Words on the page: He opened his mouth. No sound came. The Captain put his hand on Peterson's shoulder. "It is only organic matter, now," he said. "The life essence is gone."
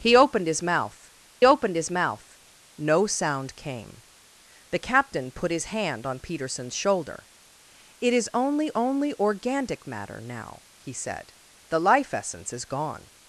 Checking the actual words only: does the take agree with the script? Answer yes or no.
no